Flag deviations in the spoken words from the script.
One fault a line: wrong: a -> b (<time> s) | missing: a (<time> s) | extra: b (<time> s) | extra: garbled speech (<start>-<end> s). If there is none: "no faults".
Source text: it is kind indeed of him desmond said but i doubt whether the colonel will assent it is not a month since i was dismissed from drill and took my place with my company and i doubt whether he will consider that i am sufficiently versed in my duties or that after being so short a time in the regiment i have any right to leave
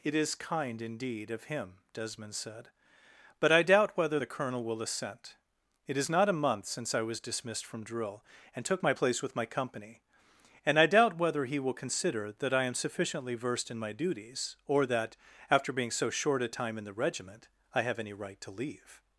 no faults